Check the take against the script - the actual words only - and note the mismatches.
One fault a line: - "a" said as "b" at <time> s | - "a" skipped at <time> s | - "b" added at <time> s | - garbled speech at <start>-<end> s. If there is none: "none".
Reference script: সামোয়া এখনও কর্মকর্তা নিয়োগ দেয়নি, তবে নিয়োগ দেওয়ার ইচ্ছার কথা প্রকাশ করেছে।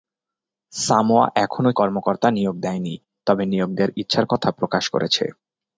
none